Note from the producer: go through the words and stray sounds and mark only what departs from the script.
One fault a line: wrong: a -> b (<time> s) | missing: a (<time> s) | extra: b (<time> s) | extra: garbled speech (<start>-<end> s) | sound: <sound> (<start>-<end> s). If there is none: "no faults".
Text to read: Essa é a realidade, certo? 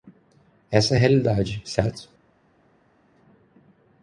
no faults